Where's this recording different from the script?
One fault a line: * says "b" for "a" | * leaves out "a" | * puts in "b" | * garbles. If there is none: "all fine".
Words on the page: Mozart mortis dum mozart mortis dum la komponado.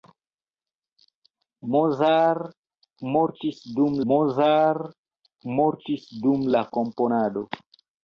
all fine